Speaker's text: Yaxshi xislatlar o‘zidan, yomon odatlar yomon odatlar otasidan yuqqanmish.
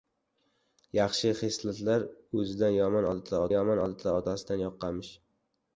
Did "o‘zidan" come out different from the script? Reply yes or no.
no